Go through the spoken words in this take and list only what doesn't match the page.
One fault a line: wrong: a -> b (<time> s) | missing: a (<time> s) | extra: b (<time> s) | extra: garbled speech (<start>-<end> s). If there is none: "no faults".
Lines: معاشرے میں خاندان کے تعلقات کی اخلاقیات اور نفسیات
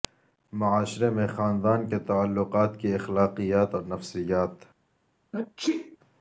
no faults